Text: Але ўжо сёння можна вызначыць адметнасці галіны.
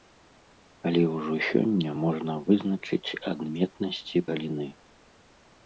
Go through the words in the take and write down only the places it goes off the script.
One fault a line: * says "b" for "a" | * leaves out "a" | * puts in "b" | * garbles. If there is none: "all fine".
all fine